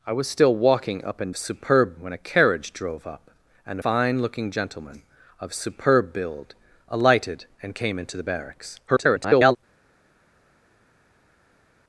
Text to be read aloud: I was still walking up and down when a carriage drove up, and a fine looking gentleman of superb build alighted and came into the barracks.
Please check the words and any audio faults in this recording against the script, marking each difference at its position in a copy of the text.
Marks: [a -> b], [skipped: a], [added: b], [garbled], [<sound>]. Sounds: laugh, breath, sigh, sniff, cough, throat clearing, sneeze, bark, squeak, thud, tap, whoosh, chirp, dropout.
I was still walking up and [down -> superb] when a carriage drove up, and [skipped: a] fine looking gentleman of superb build alighted and came into the barracks. [garbled]